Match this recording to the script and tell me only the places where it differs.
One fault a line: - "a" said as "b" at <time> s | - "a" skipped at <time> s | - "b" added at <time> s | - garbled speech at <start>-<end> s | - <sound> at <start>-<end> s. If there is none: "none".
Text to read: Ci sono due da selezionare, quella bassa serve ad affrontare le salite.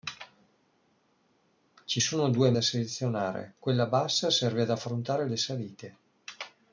none